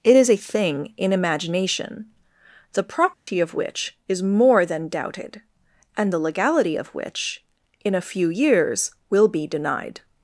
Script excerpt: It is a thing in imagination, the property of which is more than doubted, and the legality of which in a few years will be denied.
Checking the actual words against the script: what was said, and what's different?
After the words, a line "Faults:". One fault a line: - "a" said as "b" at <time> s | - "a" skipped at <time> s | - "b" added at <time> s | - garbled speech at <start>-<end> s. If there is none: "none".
It is a thing in imagination, the property of which is more than doubted, and the legality of which in a few years will be denied.
Faults:
none